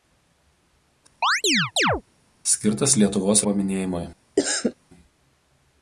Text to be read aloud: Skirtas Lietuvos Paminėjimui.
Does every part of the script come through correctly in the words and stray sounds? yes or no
no